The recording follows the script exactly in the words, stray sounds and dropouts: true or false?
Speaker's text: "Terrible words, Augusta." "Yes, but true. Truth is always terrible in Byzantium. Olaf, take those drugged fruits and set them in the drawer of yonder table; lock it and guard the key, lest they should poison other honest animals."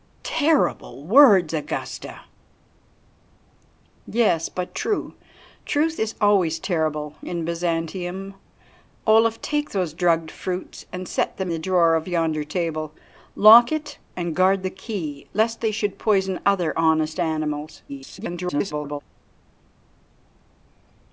false